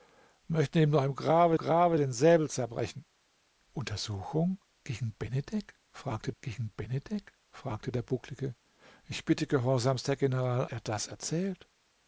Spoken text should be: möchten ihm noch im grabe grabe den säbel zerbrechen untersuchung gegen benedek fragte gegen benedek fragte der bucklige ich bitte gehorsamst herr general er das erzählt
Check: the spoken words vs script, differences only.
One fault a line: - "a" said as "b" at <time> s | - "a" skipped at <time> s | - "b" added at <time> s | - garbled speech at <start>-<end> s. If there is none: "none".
none